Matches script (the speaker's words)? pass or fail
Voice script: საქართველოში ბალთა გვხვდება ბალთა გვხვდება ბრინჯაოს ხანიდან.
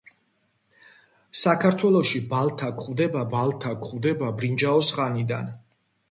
pass